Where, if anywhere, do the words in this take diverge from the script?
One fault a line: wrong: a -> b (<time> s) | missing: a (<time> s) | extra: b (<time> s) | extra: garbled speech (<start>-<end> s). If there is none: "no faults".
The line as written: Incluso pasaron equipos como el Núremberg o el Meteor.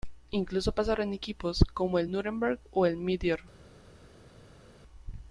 no faults